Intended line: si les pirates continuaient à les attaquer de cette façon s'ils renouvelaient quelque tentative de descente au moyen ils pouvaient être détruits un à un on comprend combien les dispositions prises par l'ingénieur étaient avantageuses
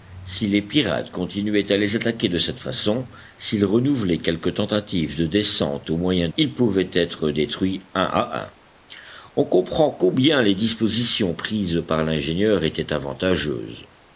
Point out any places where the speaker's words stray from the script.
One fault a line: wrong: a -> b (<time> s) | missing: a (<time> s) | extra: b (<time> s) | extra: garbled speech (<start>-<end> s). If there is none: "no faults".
no faults